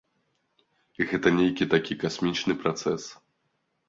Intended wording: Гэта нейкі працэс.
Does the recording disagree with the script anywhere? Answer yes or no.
yes